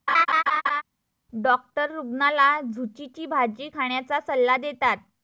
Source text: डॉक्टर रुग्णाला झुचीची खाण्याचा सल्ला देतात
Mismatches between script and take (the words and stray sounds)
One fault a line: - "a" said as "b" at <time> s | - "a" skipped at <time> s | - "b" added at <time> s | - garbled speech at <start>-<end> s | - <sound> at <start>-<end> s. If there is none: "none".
- laugh at 0.1-0.8 s
- "भाजी" added at 3.3 s